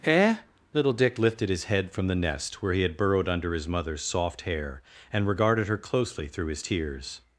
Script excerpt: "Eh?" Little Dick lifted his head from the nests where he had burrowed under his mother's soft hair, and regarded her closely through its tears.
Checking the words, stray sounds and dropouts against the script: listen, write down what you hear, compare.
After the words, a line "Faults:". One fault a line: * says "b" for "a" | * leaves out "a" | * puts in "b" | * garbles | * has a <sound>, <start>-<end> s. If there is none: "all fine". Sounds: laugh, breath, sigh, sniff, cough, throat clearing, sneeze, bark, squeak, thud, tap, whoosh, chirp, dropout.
"Eh?" Little Dick lifted his head from the nest where he had burrowed under his mother's soft hair, and regarded her closely through his tears.
Faults:
* says "nest" for "nests"
* says "his" for "its"